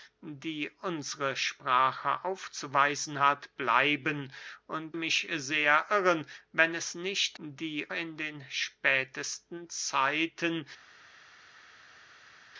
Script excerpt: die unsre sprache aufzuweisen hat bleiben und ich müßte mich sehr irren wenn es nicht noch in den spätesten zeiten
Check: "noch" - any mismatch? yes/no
yes